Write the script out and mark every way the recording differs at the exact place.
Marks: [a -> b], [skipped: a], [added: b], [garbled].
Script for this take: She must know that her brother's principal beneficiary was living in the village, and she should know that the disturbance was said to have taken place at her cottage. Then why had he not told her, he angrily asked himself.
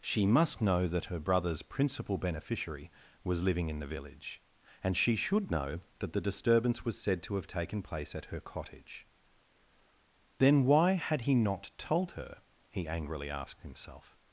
She must know that her brother's principal beneficiary was living in the village, and she should know that the disturbance was said to have taken place at her cottage. Then why had he not told her, he angrily asked himself.